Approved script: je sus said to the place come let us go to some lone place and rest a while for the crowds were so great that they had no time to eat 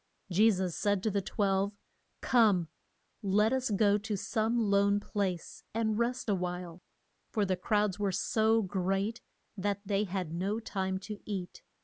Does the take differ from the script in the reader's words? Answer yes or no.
yes